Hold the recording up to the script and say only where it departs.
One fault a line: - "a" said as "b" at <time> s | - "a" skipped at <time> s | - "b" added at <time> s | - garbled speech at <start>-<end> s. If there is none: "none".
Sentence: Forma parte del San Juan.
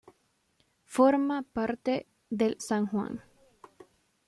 none